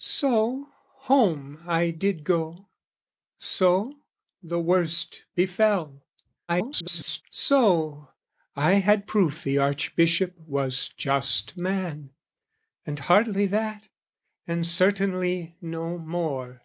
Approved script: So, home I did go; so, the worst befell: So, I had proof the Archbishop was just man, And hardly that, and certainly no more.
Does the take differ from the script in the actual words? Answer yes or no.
yes